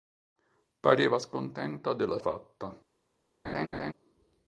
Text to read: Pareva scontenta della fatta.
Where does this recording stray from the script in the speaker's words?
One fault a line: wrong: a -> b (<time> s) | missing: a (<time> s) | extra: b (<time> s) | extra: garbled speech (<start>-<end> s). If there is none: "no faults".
no faults